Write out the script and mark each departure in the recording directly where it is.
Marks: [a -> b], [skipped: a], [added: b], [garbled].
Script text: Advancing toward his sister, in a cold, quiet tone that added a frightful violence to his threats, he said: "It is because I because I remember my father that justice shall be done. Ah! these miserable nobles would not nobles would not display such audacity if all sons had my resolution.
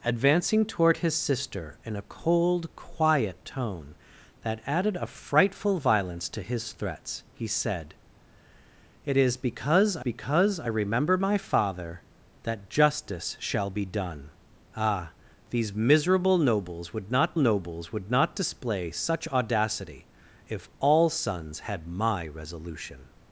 Advancing toward his sister, in a cold, quiet tone that added a frightful violence to his threats, he said: "It is because I because I remember my father that justice shall be done. Ah! these miserable nobles would not nobles would not display such audacity if all sons had my resolution.